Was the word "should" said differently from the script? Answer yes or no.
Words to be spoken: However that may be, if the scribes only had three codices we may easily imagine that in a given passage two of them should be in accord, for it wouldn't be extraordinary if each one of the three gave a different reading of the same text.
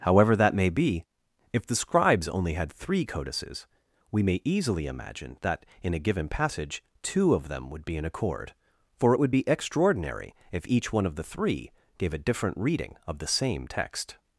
yes